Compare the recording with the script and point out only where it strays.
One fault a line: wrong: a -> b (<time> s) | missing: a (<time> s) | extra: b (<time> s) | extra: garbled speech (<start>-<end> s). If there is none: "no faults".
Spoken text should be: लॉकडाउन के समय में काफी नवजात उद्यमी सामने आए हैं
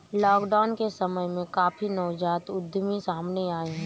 no faults